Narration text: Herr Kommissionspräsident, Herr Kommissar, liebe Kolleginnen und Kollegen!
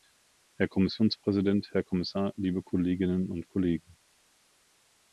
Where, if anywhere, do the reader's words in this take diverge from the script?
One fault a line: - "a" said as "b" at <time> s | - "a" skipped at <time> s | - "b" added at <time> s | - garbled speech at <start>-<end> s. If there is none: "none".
none